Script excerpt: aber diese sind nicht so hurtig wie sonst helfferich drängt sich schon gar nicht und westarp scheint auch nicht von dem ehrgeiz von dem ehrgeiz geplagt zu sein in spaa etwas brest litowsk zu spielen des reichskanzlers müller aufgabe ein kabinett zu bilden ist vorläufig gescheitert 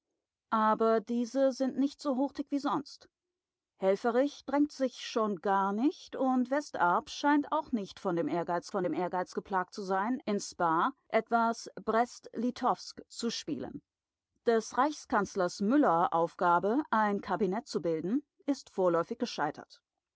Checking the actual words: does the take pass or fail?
pass